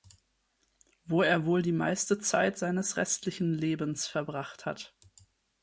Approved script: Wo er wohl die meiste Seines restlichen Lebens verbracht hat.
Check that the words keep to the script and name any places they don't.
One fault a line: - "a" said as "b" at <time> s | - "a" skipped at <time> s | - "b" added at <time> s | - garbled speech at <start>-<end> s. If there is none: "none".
- "Zeit" added at 2.2 s